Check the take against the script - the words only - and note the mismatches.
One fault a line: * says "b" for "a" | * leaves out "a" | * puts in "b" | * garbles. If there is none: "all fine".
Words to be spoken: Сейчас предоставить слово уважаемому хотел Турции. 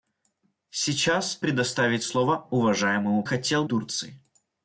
all fine